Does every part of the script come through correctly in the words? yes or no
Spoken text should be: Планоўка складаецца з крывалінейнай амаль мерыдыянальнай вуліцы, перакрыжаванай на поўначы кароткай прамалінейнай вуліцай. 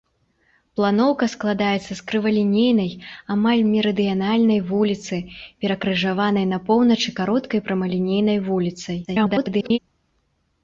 no